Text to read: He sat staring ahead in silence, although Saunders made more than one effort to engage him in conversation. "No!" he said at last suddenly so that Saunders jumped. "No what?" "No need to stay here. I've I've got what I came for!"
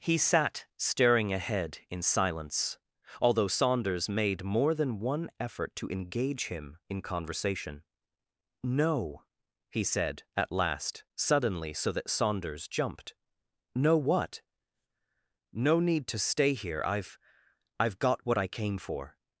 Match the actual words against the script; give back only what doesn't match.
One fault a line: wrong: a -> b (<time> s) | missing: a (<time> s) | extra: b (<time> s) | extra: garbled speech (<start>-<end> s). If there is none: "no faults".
no faults